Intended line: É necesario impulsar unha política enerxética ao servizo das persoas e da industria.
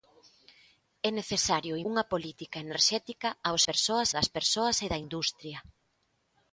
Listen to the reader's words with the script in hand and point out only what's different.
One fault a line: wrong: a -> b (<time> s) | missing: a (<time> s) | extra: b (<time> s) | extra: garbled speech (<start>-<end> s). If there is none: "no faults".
missing: impulsar (1.7 s)
wrong: servizo -> persoas (3.7 s)